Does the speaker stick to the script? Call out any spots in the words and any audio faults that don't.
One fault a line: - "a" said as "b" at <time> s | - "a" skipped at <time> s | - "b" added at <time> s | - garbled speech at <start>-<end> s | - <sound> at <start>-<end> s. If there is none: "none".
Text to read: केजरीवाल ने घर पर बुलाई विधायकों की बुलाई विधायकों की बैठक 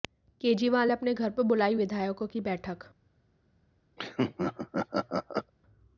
- "अपने" added at 0.9 s
- "बुलाई विधायकों की" skipped at 2.4 s
- laugh at 4.0-5.5 s